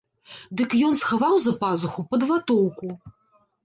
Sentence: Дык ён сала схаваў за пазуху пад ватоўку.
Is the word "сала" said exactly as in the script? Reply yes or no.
no